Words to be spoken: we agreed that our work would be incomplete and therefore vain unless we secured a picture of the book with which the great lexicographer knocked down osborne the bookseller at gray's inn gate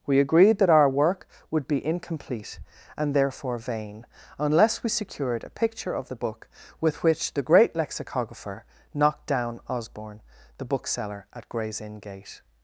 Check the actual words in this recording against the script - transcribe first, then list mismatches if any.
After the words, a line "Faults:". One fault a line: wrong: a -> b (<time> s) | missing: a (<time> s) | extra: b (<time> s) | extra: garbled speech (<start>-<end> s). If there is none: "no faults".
we agreed that our work would be incomplete and therefore vain unless we secured a picture of the book with which the great lexicographer knocked down osborne the bookseller at gray's inn gate
Faults:
no faults